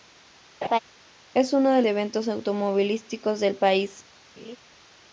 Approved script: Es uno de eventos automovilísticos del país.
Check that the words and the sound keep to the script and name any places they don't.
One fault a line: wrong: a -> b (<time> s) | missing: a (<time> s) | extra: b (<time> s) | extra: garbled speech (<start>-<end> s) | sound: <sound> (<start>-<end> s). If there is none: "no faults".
sound: laugh (0.6-0.8 s)
sound: laugh (4.4-4.6 s)